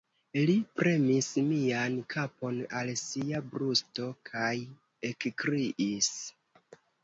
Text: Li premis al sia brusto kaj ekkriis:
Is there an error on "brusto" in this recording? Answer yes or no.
no